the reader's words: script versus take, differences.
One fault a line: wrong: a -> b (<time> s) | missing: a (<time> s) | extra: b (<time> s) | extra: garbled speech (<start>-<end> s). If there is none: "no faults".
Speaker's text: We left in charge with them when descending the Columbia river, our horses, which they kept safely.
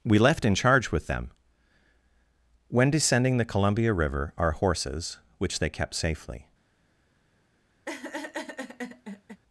no faults